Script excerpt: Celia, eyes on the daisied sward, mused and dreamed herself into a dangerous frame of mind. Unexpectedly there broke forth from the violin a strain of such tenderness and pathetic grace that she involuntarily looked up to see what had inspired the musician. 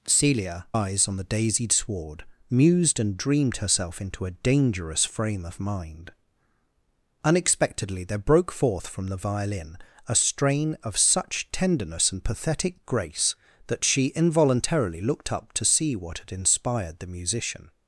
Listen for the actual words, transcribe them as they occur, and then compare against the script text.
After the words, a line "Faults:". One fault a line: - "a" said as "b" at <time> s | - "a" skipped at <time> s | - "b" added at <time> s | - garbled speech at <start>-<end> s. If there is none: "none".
Celia, eyes on the daisied sward, mused and dreamed herself into a dangerous frame of mind. Unexpectedly there broke forth from the violin a strain of such tenderness and pathetic grace that she involuntarily looked up to see what had inspired the musician.
Faults:
none